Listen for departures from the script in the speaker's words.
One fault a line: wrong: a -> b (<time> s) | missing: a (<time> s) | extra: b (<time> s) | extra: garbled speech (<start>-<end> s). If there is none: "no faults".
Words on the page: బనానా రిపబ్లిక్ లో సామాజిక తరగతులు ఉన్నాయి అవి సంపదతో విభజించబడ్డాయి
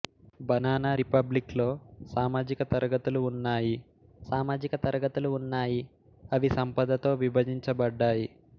extra: సామాజిక తరగతులు ఉన్నాయి (4.3 s)